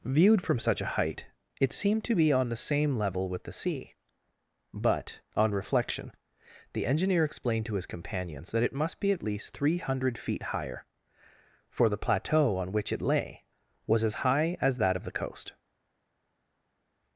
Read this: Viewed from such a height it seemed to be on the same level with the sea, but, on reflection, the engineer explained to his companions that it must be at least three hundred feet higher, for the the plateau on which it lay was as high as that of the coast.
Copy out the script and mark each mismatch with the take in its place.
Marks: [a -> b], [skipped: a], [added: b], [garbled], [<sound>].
Viewed from such a height it seemed to be on the same level with the sea, but, on reflection, the engineer explained to his companions that it must be at least three hundred feet higher, for the [skipped: the] plateau on which it lay was as high as that of the coast.